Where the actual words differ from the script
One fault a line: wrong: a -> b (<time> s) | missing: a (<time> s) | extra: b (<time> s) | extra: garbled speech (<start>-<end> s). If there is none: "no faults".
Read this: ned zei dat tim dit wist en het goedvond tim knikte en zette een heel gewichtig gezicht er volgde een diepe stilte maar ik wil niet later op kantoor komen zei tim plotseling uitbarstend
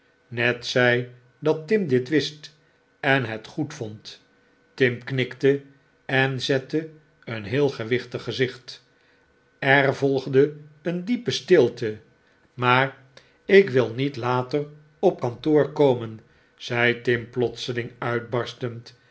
no faults